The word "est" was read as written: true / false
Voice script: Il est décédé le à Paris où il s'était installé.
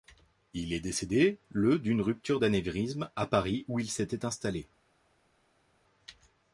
true